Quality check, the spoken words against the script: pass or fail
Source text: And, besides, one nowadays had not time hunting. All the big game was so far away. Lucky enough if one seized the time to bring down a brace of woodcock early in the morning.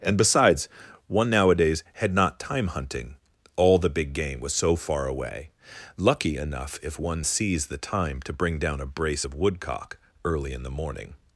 pass